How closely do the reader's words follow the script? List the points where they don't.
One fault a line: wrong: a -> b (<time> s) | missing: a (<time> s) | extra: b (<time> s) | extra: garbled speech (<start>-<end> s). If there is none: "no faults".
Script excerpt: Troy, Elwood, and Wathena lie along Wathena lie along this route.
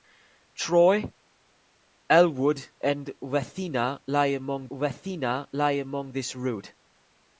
no faults